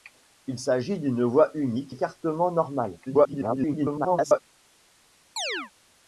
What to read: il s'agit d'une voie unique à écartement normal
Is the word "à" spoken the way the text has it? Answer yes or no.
no